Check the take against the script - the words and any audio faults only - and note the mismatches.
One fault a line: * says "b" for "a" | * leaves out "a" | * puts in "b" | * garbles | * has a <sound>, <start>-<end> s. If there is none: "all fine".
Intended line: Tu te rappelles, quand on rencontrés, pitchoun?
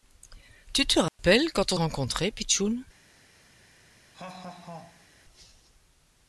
* has a dropout, 1.1-1.2 s
* has a laugh, 4.1-5.1 s